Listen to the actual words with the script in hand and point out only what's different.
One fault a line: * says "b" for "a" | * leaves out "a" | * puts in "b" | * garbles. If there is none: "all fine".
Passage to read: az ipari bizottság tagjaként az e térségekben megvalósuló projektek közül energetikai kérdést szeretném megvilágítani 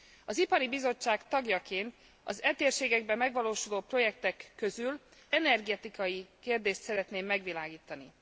all fine